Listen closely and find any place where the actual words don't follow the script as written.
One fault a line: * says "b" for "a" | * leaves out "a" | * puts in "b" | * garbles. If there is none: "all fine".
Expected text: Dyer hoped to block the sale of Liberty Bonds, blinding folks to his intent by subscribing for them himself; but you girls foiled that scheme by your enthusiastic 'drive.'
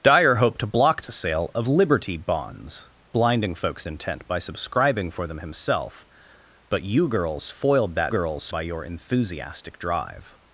* leaves out "to his"
* says "girls" for "scheme"